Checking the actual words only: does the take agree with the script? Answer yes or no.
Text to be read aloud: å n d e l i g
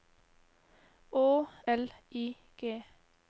no